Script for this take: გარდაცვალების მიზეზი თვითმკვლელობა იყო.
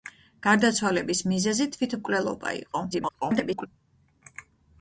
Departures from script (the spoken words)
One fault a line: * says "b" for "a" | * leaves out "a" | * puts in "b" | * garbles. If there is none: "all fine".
* garbles